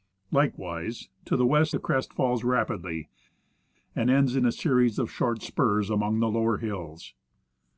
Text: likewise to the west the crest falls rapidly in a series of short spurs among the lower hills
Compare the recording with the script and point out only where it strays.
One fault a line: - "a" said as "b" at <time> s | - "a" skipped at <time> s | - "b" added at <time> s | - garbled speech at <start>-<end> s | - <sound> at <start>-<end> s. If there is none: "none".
- "and ends" added at 3.9 s